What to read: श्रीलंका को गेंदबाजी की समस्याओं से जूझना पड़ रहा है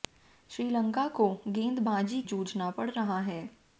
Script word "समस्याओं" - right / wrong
wrong